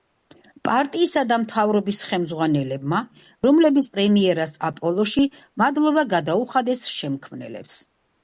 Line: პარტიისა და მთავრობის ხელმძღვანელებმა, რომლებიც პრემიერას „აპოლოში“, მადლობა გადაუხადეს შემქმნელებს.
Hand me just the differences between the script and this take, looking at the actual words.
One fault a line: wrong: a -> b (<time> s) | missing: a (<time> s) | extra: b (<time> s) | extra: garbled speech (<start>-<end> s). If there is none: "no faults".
no faults